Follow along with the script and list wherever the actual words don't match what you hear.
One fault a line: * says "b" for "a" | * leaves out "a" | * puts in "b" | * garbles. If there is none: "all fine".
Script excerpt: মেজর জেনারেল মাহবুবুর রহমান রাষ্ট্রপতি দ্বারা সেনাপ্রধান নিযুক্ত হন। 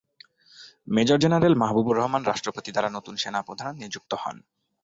* puts in "নতুন"